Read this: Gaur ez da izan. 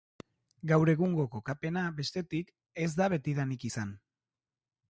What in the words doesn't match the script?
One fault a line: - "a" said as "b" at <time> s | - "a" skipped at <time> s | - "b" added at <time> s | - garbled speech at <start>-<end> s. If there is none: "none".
- "egungo kokapena bestetik" added at 0.9 s
- "betidanik" added at 3.1 s